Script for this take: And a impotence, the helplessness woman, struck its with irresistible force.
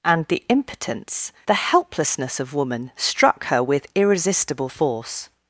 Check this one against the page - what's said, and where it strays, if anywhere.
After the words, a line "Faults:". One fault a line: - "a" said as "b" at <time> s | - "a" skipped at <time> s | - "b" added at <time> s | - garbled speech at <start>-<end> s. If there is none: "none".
And the impotence, the helplessness of woman, struck her with irresistible force.
Faults:
- "a" said as "the" at 0.3 s
- "of" added at 2.4 s
- "its" said as "her" at 3.4 s